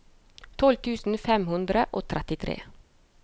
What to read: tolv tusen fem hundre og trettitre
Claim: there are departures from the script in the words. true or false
false